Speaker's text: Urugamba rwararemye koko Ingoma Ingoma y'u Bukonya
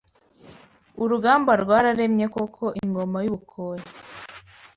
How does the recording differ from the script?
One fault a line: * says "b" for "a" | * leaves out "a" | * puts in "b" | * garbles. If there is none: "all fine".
* leaves out "Ingoma"